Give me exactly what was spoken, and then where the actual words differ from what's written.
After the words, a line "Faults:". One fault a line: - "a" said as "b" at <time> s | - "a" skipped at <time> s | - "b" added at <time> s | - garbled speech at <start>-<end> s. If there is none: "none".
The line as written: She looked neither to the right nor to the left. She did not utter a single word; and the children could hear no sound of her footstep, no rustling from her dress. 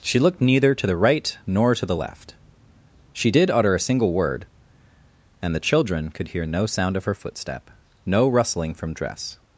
She looked neither to the right nor to the left. She did utter a single word; and the children could hear no sound of her footstep, no rustling from dress.
Faults:
- "not" skipped at 3.5 s
- "her" skipped at 8.9 s